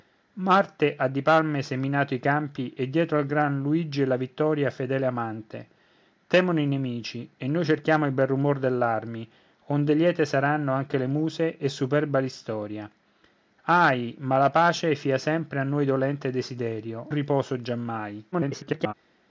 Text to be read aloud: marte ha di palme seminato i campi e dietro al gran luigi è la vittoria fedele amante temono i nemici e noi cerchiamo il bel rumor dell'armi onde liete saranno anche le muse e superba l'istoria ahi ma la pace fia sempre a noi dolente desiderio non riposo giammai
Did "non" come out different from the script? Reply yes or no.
yes